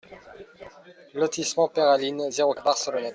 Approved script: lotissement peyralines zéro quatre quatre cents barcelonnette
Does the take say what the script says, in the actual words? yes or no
no